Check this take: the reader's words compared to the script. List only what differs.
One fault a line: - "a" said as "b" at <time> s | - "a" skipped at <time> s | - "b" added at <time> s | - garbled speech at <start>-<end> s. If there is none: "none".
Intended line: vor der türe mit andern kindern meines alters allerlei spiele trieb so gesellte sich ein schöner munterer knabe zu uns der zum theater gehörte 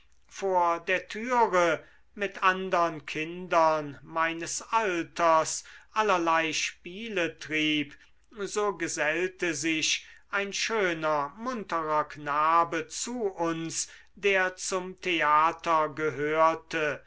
none